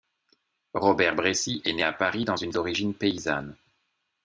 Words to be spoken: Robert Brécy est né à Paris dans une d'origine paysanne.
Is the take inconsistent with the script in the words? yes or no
no